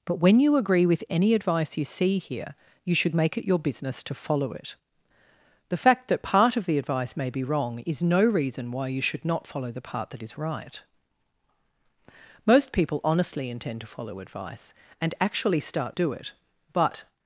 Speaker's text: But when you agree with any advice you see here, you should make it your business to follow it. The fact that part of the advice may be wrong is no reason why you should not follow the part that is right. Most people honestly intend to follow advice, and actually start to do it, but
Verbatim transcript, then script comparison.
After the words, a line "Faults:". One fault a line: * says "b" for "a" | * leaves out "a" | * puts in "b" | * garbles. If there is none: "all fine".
But when you agree with any advice you see here, you should make it your business to follow it. The fact that part of the advice may be wrong is no reason why you should not follow the part that is right. Most people honestly intend to follow advice, and actually start do it, but
Faults:
* leaves out "to"